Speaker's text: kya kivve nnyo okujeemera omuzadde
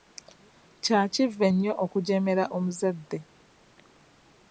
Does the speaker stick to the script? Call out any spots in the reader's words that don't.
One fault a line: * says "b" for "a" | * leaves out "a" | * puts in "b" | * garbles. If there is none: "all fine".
all fine